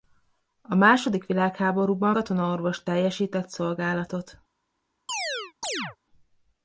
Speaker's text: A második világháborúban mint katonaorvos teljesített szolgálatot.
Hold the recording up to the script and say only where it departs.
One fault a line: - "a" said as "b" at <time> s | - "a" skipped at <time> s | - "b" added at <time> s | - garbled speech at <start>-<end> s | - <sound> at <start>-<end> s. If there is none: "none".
- "mint" skipped at 2.2 s
- chirp at 5.1-6.0 s